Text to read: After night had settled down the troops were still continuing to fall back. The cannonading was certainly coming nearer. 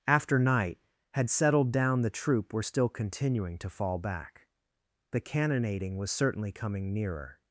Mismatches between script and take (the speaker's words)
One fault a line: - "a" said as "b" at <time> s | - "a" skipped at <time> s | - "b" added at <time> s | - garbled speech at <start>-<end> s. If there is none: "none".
- "troops" said as "troop" at 2.1 s